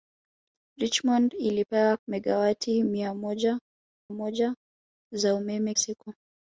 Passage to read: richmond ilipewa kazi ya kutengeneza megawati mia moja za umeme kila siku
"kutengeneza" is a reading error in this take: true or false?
true